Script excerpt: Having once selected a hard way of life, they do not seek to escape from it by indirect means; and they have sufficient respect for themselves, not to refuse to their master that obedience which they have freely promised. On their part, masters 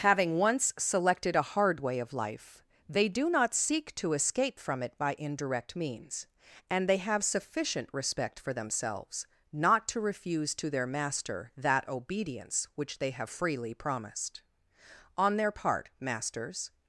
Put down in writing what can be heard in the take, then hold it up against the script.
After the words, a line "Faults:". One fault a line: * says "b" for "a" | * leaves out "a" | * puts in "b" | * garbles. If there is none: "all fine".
Having once selected a hard way of life, they do not seek to escape from it by indirect means; and they have sufficient respect for themselves, not to refuse to their master that obedience which they have freely promised. On their part, masters
Faults:
all fine